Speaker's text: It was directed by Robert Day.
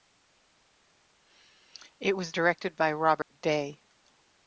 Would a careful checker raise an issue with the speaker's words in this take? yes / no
no